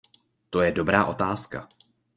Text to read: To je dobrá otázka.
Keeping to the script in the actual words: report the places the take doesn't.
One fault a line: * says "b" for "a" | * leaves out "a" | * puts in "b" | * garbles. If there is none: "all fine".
all fine